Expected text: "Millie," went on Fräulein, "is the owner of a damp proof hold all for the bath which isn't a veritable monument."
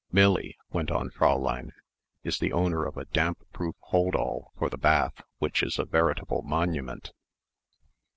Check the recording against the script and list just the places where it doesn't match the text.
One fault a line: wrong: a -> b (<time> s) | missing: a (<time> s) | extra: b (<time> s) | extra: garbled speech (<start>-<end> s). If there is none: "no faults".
wrong: isn't -> is (5.6 s)